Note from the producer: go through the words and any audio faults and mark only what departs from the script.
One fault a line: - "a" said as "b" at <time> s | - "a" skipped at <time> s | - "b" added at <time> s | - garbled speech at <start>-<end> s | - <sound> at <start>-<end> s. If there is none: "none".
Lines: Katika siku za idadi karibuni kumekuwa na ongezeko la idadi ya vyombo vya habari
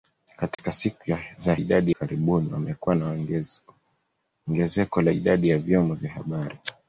- dropout at 0.5-0.6 s